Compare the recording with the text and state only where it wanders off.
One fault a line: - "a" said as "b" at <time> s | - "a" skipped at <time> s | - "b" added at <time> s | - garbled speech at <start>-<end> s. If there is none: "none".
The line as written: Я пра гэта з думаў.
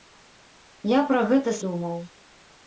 none